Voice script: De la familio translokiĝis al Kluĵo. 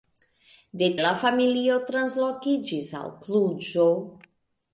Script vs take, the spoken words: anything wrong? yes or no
no